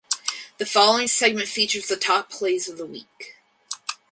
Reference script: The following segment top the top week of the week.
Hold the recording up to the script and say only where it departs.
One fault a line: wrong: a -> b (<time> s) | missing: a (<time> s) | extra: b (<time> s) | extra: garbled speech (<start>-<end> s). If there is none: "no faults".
wrong: top -> features (1.5 s)
wrong: week -> plays (2.3 s)